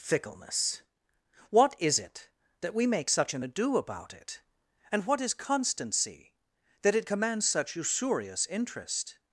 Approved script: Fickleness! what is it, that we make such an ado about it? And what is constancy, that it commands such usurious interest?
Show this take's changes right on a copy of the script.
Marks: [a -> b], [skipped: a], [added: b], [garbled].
Fickleness! what is it, that we make such an ado about it? And what is constancy, that it commands such usurious interest?